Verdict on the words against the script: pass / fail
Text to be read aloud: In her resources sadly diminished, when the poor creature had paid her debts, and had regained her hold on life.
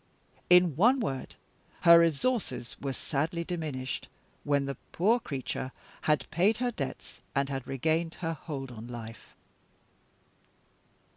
fail